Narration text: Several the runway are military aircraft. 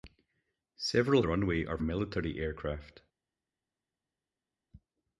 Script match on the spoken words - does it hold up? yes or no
yes